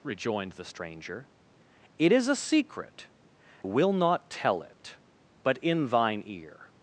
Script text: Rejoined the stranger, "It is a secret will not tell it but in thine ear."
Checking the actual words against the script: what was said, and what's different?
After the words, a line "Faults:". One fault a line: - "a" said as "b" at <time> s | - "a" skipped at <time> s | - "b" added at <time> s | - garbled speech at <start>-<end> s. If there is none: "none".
Rejoined the stranger, "It is a secret will not tell it but in thine ear."
Faults:
none